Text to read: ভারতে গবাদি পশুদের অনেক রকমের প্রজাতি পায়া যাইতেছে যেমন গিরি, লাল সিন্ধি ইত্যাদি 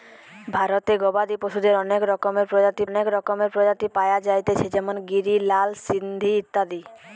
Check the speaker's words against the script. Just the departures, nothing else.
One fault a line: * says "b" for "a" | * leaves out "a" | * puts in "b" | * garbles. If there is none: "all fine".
* puts in "অনেক রকমের প্রজাতি"